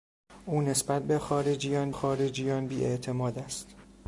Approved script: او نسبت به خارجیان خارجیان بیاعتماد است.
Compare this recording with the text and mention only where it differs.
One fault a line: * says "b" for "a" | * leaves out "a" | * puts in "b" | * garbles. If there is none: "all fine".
all fine